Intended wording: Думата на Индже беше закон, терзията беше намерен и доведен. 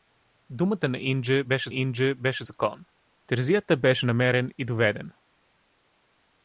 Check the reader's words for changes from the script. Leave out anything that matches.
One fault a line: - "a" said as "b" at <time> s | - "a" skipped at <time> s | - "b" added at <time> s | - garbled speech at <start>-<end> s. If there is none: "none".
- "Индже беше" added at 1.7 s